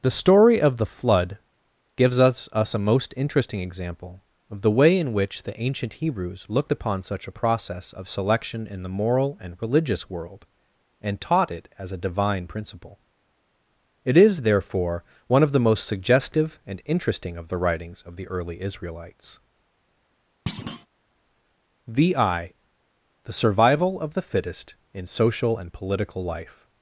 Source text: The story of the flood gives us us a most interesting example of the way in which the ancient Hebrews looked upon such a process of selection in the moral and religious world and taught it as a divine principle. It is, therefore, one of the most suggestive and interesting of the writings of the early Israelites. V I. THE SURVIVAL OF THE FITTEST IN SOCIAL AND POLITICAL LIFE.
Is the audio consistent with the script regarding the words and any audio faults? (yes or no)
no